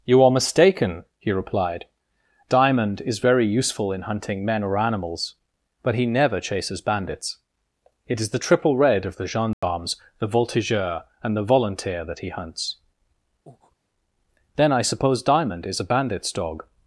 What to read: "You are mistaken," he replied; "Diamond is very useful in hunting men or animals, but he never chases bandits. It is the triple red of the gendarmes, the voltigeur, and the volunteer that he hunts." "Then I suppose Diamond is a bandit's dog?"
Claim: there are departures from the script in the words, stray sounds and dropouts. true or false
true